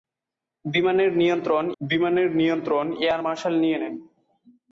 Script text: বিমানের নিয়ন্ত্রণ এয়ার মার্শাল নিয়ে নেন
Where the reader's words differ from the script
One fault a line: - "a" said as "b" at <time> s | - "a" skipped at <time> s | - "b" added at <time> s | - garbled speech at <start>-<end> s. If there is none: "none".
- "বিমানের নিয়ন্ত্রণ" added at 1.8 s